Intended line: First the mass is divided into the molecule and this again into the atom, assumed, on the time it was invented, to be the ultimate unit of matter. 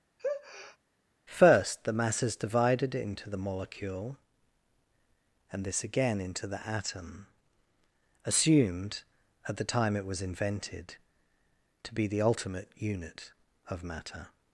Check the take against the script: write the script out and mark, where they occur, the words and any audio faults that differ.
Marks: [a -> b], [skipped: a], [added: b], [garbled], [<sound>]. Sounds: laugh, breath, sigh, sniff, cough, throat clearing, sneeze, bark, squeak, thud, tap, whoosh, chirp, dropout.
[sneeze] First the mass is divided into the molecule and this again into the atom, assumed, [on -> at] the time it was invented, to be the ultimate unit of matter.